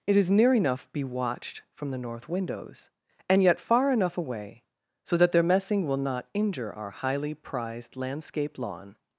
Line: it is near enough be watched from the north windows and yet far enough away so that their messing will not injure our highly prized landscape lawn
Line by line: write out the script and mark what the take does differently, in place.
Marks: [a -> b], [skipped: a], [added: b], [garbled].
it is near enough be watched from the north windows and yet far enough away so that their messing will not injure our highly prized landscape lawn